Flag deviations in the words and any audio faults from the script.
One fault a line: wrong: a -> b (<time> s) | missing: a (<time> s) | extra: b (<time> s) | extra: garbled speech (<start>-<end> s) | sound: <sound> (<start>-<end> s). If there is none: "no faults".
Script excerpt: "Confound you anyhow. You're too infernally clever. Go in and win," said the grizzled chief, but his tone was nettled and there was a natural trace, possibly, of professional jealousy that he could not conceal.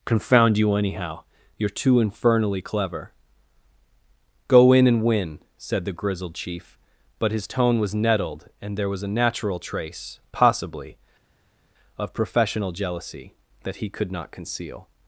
no faults